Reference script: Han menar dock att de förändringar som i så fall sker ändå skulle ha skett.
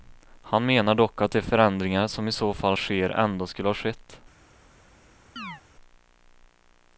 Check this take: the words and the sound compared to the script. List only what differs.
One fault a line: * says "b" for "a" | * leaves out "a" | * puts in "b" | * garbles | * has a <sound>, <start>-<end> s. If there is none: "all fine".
* has a chirp, 5.4-5.6 s